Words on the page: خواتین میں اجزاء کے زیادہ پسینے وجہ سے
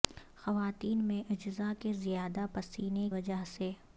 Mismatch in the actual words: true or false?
false